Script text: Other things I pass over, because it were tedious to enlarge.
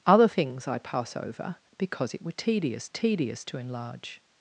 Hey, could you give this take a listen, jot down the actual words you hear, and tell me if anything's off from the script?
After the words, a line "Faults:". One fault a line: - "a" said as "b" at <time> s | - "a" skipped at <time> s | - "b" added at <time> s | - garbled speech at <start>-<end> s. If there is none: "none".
Other things I pass over, because it were tedious tedious to enlarge.
Faults:
- "tedious" added at 2.9 s